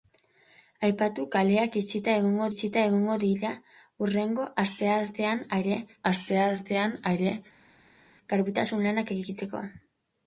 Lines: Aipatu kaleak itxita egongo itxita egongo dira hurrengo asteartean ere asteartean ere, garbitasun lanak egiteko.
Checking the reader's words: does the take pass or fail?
pass